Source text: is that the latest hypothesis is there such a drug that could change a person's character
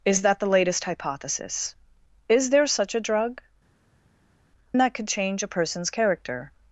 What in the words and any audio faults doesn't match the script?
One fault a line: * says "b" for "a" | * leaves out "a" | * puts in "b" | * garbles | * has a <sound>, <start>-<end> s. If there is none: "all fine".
all fine